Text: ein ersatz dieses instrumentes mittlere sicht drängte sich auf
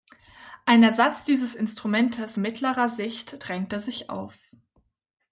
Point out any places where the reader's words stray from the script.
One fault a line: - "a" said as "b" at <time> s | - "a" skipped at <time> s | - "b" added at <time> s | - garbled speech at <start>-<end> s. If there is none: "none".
none